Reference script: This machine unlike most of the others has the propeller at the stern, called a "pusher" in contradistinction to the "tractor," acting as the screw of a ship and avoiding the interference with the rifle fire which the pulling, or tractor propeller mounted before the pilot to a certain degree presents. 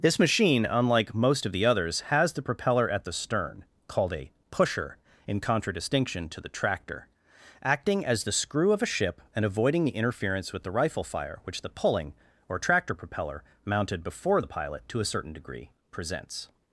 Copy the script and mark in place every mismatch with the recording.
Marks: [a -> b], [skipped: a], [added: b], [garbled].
This machine unlike most of the others has the propeller at the stern, called a "pusher" in contradistinction to the "tractor," acting as the screw of a ship and avoiding the interference with the rifle fire which the pulling, or tractor propeller mounted before the pilot to a certain degree presents.